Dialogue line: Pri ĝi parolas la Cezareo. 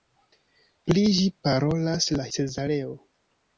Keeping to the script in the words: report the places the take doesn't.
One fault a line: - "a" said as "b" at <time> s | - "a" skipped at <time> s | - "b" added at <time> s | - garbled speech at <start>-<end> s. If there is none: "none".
none